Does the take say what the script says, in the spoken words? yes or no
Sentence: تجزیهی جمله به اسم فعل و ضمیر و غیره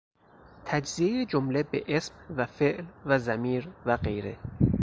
no